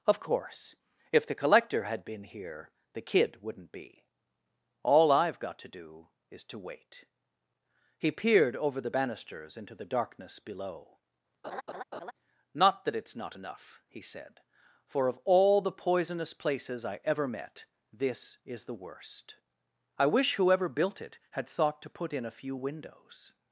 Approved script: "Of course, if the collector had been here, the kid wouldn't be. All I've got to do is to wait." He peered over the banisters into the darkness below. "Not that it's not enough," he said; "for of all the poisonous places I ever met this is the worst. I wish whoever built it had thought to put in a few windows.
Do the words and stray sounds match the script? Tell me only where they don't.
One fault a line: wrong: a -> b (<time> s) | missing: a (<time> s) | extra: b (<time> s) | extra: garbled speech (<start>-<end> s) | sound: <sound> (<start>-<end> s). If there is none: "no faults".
sound: laugh (11.4-12.1 s)